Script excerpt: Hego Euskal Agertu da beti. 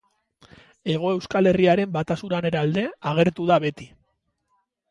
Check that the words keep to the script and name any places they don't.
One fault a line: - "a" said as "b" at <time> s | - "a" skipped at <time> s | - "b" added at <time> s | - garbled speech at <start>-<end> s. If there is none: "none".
- "Herriaren batasunaren alde" added at 1.5 s